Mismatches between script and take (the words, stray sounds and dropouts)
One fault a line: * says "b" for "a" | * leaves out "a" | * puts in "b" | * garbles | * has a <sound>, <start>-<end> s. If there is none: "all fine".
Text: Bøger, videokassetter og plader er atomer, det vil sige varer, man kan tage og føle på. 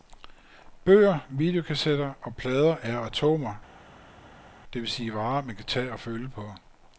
all fine